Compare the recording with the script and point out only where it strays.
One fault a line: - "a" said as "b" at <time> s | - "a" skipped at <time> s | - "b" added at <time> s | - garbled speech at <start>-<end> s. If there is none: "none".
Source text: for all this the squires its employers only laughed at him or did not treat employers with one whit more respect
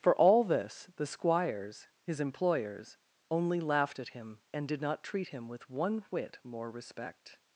- "its" said as "his" at 2.0 s
- "or" said as "and" at 4.5 s
- "employers" said as "him" at 5.3 s